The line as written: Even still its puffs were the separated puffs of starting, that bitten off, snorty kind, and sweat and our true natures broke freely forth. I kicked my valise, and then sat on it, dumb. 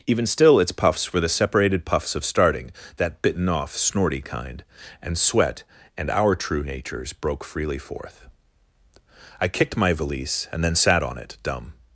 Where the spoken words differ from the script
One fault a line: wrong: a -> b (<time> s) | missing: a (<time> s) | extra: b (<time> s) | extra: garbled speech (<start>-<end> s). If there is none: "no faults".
no faults